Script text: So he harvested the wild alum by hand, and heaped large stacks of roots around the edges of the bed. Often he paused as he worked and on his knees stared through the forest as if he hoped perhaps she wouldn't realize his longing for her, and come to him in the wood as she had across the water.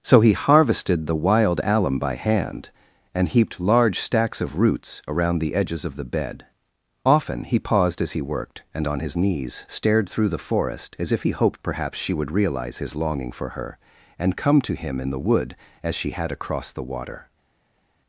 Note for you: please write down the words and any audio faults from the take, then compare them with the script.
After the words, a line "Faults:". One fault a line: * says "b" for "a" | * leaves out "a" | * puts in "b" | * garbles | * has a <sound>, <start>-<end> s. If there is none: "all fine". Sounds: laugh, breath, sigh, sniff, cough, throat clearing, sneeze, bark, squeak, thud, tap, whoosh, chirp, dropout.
So he harvested the wild alum by hand, and heaped large stacks of roots around the edges of the bed. Often he paused as he worked and on his knees stared through the forest as if he hoped perhaps she would realize his longing for her, and come to him in the wood as she had across the water.
Faults:
* says "would" for "wouldn't"